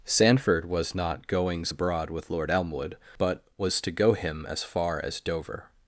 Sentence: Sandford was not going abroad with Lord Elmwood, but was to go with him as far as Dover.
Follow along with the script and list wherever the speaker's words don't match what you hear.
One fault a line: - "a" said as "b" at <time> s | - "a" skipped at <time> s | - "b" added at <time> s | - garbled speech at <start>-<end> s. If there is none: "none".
- "going" said as "goings" at 1.3 s
- "with" skipped at 4.1 s